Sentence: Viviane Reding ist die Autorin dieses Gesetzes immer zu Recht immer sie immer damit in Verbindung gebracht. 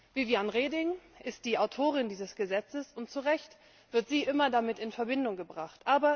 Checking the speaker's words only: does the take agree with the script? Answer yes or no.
no